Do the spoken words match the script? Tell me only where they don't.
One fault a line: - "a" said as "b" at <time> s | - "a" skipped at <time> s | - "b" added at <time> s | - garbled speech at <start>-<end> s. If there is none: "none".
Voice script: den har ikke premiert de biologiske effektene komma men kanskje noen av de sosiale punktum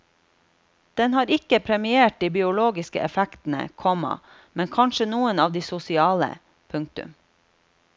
none